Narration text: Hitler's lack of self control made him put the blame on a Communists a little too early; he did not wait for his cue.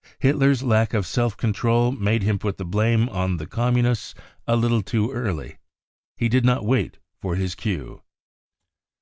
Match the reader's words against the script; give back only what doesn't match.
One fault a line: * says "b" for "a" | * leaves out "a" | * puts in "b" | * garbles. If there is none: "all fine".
* says "the" for "a"